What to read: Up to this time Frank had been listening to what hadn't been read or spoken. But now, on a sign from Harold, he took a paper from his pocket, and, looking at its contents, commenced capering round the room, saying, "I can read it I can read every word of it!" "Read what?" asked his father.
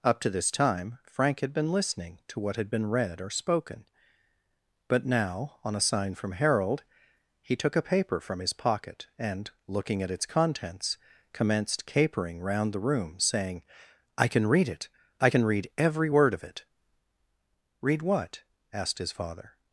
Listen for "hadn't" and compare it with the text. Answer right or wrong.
wrong